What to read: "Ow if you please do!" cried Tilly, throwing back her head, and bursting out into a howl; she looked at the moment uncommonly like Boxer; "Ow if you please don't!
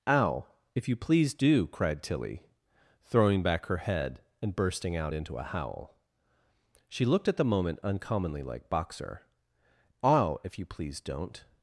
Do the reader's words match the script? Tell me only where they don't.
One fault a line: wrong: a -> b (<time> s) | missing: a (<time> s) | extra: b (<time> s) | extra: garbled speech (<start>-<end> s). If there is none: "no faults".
no faults